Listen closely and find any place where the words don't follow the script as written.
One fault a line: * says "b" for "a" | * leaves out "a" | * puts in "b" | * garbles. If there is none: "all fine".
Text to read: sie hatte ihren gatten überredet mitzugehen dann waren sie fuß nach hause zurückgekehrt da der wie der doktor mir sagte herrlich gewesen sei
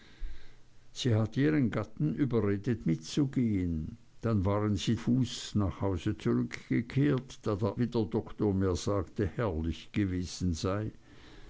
all fine